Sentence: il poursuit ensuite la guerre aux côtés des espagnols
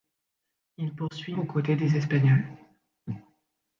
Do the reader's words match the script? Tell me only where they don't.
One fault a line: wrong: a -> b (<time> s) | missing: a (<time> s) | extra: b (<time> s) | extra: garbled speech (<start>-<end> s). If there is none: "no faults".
missing: ensuite la guerre (1.4 s)